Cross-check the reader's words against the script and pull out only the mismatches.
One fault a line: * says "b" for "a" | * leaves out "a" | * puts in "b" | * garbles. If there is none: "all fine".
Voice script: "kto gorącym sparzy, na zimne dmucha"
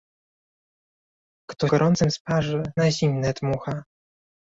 all fine